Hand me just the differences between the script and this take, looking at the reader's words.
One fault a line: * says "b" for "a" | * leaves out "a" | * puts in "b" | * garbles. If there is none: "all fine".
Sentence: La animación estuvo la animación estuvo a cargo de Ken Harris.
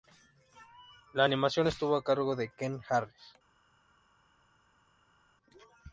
* leaves out "la animación estuvo"